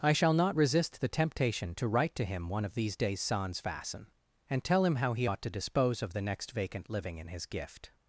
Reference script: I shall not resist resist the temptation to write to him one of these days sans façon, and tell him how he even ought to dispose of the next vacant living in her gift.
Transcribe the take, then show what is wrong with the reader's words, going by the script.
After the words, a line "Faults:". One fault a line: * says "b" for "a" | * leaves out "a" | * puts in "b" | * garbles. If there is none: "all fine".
I shall not resist the temptation to write to him one of these days sans façon, and tell him how he ought to dispose of the next vacant living in his gift.
Faults:
* leaves out "resist"
* leaves out "even"
* says "his" for "her"